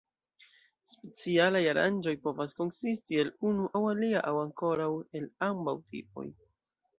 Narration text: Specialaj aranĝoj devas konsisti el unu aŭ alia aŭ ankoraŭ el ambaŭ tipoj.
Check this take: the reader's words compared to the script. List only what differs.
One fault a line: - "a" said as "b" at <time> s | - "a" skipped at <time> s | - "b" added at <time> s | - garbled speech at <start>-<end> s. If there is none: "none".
- "devas" said as "povas" at 2.2 s